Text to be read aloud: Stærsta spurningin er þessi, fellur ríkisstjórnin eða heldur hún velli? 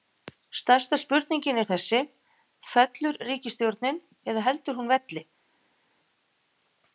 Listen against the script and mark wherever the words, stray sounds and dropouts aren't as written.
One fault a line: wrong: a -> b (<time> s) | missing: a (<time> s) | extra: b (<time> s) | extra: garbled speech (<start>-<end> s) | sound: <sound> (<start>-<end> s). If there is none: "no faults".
no faults